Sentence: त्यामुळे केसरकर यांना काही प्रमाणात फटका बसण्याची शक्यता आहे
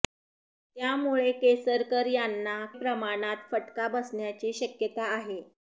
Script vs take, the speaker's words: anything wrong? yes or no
yes